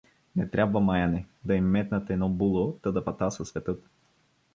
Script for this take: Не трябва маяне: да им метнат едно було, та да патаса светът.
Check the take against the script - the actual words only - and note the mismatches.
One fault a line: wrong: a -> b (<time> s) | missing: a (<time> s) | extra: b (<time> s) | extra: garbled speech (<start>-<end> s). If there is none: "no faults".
no faults